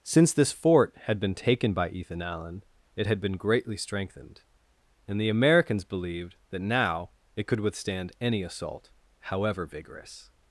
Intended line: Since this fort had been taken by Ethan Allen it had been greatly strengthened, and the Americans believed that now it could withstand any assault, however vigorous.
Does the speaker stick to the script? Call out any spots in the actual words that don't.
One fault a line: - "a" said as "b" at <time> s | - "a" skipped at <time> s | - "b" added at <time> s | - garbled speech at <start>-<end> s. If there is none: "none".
none